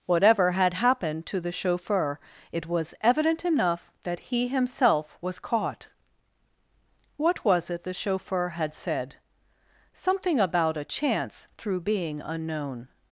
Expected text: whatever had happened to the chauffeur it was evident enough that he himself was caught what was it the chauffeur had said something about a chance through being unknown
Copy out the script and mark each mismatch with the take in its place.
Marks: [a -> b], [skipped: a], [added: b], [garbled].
whatever had happened to the chauffeur it was evident enough that he himself was caught what was it the chauffeur had said something about a chance through being unknown